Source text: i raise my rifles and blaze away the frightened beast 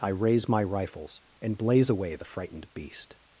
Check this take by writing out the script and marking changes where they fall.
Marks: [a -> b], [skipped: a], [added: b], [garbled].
i raise my rifles and blaze away the frightened beast